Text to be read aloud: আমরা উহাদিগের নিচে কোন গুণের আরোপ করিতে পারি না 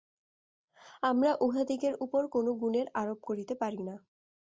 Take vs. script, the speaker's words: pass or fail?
fail